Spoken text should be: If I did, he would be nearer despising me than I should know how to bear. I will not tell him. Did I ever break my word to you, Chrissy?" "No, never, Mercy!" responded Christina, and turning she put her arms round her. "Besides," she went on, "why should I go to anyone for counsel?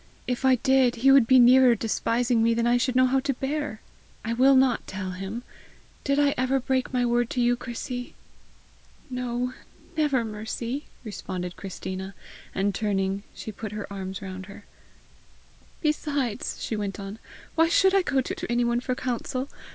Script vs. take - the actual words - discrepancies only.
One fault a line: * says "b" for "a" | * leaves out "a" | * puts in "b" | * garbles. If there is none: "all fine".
* puts in "to"